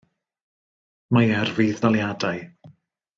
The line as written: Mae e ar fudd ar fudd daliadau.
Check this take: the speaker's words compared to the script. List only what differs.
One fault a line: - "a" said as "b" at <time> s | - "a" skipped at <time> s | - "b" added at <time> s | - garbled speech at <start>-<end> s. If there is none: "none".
- "ar fudd" skipped at 1.8 s